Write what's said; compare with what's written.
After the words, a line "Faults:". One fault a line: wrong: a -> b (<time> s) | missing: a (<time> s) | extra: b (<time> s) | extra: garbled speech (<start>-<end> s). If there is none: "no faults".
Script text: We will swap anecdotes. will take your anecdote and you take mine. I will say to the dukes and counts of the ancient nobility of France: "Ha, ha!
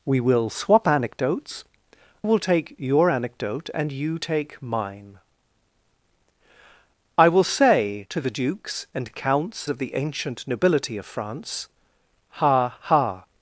We will swap anecdotes. will take your anecdote and you take mine. I will say to the dukes and counts of the ancient nobility of France: "Ha, ha!
Faults:
no faults